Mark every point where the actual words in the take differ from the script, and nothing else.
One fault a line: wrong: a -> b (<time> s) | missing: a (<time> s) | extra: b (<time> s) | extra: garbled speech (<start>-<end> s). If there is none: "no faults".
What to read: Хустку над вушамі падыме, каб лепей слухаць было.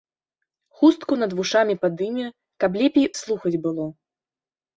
no faults